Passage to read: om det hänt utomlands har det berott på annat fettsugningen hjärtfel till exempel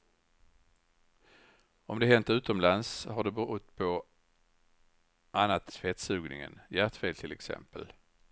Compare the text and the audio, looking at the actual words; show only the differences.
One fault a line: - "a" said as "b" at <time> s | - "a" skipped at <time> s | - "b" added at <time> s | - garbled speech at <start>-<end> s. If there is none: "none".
none